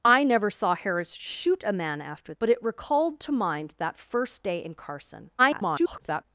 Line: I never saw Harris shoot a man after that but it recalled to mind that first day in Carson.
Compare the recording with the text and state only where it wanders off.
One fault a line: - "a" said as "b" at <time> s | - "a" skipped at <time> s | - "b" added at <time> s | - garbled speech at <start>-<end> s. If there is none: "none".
- "that" skipped at 2.3 s
- garbled speech at 5.4-6.2 s